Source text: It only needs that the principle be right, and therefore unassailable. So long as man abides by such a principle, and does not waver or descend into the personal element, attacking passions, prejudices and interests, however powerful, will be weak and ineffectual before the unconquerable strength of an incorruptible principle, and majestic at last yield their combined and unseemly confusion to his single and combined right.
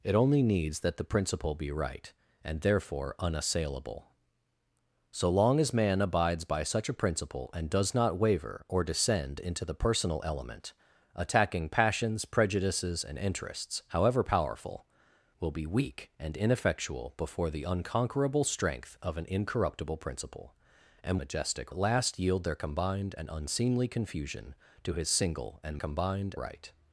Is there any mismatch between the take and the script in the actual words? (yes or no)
no